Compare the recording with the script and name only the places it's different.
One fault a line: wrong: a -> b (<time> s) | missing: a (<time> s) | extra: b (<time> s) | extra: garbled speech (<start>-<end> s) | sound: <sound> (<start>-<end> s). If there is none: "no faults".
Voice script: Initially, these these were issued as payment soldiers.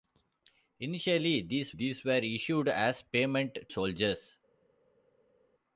no faults